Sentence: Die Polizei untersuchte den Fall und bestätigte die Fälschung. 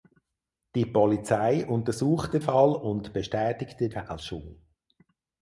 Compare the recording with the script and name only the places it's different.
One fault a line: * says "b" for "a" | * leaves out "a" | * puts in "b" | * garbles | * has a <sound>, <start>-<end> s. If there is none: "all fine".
* leaves out "den"
* leaves out "die"